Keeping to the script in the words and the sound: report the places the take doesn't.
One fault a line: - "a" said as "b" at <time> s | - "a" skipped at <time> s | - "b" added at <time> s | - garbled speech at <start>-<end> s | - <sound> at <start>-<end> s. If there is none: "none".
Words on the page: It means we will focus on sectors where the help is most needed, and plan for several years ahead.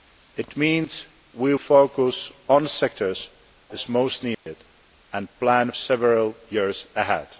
- "will" skipped at 1.5 s
- "where the help" skipped at 3.3 s
- dropout at 4.3-4.5 s
- "for" skipped at 5.7 s